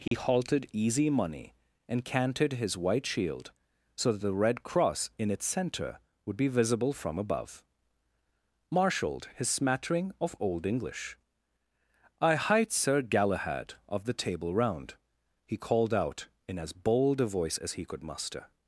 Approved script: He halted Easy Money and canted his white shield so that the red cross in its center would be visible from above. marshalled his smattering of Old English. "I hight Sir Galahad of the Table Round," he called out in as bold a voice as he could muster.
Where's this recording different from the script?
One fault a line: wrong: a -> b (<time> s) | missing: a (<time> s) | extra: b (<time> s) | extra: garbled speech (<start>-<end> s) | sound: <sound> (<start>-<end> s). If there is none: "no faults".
sound: dropout (0.1-0.1 s)